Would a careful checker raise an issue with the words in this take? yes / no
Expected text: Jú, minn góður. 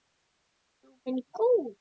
no